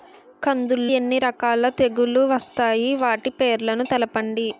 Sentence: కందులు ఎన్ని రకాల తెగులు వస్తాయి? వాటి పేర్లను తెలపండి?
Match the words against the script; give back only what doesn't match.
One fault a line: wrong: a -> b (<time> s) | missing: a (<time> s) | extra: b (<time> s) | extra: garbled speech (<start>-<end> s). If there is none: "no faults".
no faults